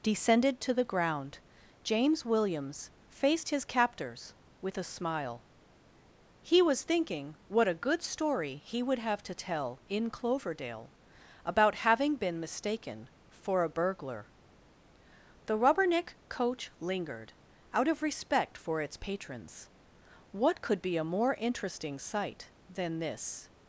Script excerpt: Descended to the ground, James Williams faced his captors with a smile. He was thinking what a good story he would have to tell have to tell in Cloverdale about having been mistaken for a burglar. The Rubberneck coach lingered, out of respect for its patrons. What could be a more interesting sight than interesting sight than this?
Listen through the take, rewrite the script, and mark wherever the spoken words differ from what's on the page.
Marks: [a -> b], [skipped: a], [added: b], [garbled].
Descended to the ground, James Williams faced his captors with a smile. He was thinking what a good story he would have to tell [skipped: have to tell] in Cloverdale about having been mistaken for a burglar. The Rubberneck coach lingered, out of respect for its patrons. What could be a more interesting sight than [skipped: interesting sight than] this?